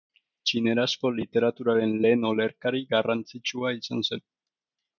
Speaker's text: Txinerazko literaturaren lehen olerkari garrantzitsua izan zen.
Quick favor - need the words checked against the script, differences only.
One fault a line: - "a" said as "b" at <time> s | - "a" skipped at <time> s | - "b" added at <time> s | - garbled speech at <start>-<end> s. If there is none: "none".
none